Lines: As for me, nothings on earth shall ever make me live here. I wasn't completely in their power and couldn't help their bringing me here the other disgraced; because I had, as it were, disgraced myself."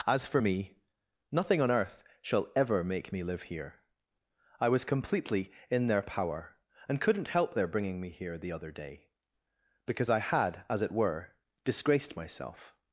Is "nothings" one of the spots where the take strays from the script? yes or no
yes